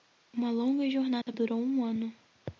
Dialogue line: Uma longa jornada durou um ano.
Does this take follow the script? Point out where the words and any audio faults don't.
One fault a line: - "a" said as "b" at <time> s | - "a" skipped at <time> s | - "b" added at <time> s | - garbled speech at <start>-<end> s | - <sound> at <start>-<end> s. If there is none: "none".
- dropout at 1.2-1.3 s